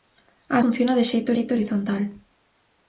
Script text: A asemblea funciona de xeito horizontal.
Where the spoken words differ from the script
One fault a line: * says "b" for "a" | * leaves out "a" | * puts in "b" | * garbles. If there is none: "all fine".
* leaves out "asemblea"
* puts in "xeito"